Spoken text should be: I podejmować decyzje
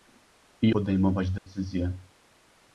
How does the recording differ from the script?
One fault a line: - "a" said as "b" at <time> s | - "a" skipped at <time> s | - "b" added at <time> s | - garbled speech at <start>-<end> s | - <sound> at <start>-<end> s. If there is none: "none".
- dropout at 1.4-1.5 s